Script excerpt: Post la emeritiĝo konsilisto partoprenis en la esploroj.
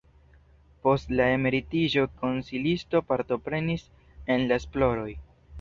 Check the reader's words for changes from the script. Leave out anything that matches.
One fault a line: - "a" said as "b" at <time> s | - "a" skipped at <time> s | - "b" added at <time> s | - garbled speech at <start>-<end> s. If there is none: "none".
none